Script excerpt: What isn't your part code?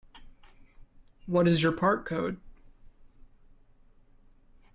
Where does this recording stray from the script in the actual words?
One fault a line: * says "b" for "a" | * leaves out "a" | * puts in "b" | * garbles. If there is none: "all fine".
* says "is" for "isn't"